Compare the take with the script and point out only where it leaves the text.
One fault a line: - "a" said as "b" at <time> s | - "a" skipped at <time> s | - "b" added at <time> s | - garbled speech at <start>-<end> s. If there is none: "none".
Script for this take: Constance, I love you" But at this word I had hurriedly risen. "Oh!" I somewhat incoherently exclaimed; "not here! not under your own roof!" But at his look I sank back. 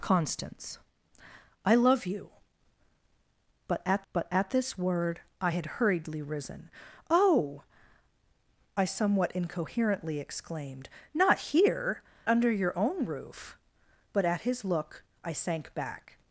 - "But at" added at 4.1 s
- "not" skipped at 12.0 s